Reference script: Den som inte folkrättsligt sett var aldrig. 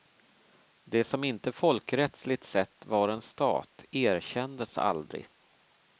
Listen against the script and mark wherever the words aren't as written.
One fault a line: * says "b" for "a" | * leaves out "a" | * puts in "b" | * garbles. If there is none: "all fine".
* says "Det" for "Den"
* puts in "en stat erkändes"